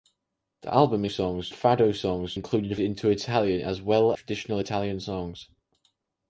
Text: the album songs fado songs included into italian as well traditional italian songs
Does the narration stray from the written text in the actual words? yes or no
no